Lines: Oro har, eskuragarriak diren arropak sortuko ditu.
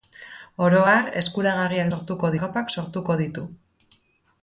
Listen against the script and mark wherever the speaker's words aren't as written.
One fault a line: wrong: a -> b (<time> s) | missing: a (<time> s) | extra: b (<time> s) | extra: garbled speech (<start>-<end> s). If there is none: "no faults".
wrong: diren -> sortuko (1.9 s)